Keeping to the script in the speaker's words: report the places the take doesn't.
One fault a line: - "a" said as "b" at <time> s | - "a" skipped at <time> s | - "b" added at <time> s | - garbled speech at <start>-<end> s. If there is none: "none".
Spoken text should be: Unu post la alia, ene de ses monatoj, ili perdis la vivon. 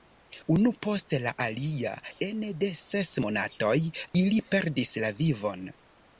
none